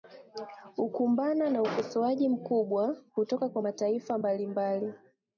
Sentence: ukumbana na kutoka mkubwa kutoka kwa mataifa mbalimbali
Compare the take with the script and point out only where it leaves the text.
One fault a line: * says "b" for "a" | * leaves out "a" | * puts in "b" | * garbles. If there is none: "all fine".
* says "ukosoaji" for "kutoka"